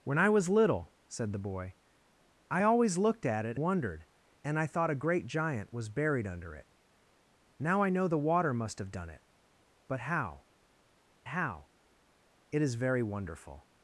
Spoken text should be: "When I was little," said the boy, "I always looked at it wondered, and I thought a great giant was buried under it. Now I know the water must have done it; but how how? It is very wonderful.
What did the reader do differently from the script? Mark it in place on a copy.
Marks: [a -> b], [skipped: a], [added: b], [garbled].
"When I was little," said the boy, "I always looked at it wondered, and I thought a great giant was buried under it. Now I know the water must have done it; but how how? It is very wonderful.